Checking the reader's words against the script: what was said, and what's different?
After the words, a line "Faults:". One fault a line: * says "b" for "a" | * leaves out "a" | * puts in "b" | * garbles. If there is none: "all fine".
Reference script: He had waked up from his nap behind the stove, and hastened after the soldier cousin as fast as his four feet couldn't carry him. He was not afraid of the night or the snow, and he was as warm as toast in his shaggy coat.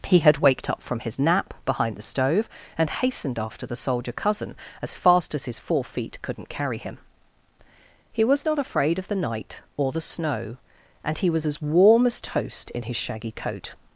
He had waked up from his nap behind the stove, and hastened after the soldier cousin as fast as his four feet couldn't carry him. He was not afraid of the night or the snow, and he was as warm as toast in his shaggy coat.
Faults:
all fine